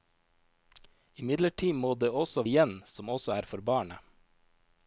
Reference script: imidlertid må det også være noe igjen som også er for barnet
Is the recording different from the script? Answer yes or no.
yes